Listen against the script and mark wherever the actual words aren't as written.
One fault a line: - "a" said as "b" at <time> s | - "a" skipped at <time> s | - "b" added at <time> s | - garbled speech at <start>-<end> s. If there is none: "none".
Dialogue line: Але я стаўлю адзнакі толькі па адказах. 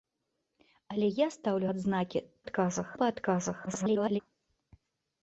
- "толькі" said as "адказах" at 2.4 s
- garbled speech at 3.7-4.2 s